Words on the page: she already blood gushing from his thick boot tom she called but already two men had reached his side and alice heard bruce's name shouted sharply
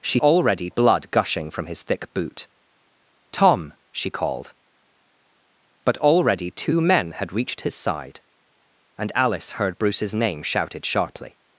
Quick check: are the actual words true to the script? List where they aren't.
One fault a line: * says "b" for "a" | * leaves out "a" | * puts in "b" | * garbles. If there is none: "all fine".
all fine